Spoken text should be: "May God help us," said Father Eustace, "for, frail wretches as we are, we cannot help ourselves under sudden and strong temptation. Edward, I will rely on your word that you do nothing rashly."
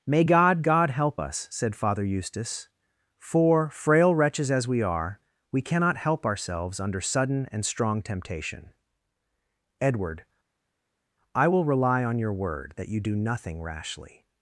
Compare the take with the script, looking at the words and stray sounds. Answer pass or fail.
fail